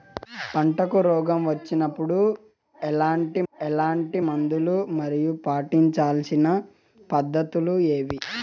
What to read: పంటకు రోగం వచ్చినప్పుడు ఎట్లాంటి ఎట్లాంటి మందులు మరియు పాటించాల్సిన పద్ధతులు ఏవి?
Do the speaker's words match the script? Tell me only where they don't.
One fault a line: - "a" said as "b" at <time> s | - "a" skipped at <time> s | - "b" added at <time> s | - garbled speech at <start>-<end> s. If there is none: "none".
none